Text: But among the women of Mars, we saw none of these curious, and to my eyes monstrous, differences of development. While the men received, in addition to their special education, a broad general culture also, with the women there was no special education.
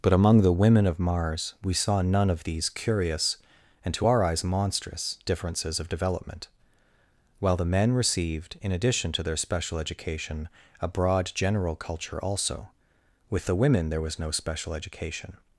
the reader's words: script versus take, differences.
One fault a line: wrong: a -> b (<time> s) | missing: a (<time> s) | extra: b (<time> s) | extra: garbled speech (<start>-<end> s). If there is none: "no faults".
wrong: my -> our (4.1 s)